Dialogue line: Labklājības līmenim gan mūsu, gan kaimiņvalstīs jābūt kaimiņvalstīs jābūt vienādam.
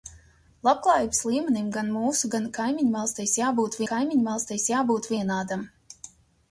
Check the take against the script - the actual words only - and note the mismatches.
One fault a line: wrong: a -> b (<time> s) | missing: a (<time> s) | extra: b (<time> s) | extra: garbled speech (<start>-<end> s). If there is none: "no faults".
no faults